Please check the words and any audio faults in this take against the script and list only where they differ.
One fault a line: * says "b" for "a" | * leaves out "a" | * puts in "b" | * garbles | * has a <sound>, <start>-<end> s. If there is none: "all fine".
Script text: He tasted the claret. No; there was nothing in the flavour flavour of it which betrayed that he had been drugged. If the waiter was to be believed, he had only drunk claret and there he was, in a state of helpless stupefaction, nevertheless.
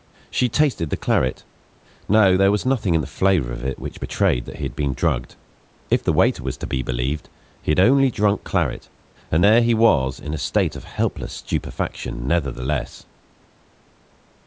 * says "She" for "He"
* leaves out "flavour"